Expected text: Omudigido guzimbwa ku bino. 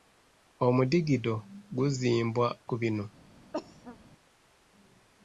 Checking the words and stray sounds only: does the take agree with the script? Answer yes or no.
no